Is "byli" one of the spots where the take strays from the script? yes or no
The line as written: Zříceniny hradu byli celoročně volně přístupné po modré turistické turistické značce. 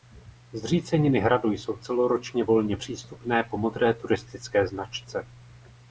yes